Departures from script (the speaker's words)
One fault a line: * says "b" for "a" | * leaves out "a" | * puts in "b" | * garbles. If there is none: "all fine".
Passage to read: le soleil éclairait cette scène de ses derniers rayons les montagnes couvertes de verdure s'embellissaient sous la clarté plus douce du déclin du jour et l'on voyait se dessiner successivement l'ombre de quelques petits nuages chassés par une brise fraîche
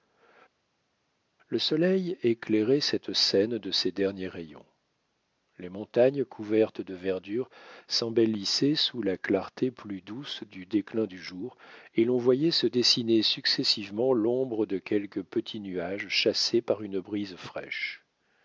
all fine